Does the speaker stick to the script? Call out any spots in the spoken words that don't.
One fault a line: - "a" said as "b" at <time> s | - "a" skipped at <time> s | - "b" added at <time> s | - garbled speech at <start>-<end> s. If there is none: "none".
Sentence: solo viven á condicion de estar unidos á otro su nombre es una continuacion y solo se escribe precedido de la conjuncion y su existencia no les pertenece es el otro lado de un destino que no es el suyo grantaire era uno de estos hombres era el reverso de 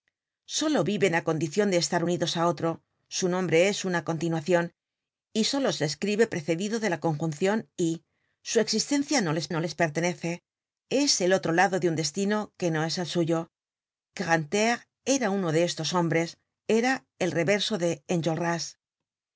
- "no les" added at 9.5 s